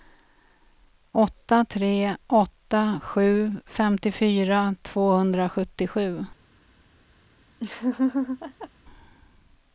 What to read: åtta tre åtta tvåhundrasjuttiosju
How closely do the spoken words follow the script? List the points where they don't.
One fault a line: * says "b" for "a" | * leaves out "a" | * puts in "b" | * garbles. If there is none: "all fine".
* puts in "sju femtiofyra"